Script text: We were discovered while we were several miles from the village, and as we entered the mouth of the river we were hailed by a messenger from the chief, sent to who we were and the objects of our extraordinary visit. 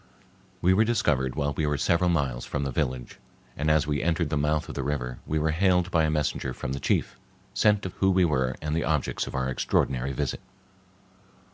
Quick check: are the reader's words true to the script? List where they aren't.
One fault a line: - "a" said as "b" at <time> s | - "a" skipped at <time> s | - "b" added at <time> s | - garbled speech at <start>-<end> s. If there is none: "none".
none